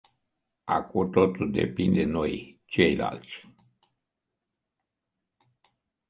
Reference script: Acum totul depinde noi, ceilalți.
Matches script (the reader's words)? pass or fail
pass